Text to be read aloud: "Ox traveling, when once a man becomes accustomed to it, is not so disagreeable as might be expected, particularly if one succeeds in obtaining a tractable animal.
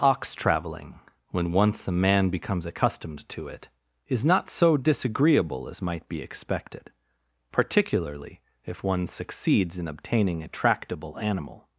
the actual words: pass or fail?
pass